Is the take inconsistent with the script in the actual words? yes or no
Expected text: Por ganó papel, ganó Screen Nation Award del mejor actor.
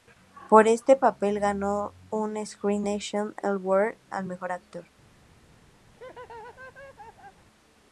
yes